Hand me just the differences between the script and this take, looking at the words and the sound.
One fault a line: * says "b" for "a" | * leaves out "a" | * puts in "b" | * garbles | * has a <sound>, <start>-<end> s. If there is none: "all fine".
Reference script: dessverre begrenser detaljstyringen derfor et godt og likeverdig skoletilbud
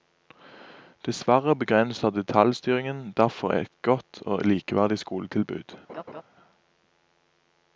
* has a laugh, 5.9-6.2 s